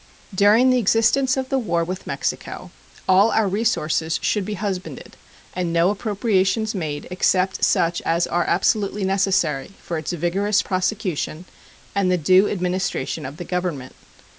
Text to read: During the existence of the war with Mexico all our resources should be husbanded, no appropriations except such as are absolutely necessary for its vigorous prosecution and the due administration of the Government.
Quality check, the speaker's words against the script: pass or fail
fail